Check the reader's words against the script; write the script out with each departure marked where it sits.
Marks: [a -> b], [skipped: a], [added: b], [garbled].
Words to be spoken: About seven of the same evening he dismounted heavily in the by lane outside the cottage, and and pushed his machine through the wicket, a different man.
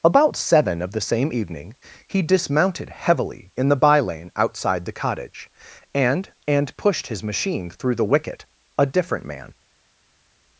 About seven of the same evening he dismounted heavily in the by lane outside the cottage, and and pushed his machine through the wicket, a different man.